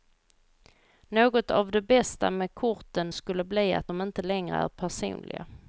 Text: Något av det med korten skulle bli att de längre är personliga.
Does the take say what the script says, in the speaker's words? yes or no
no